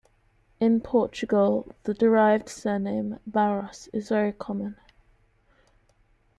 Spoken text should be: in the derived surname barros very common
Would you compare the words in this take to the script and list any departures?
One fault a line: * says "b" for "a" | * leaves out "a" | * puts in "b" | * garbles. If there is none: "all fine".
* puts in "portugal"
* puts in "is"